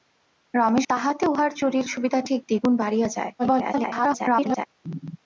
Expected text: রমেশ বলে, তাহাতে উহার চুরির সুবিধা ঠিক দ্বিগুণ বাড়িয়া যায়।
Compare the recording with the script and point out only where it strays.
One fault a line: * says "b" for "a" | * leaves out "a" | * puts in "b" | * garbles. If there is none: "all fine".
* leaves out "বলে"
* garbles